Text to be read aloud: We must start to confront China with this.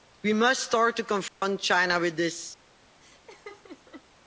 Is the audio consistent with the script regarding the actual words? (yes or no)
yes